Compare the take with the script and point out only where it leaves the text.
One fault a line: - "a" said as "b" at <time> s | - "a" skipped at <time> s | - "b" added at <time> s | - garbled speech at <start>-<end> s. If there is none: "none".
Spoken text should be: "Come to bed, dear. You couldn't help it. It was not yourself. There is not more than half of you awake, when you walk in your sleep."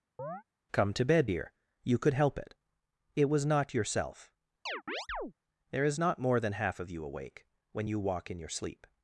- "couldn't" said as "could" at 2.0 s